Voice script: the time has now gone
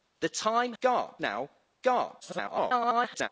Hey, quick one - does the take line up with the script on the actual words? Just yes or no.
no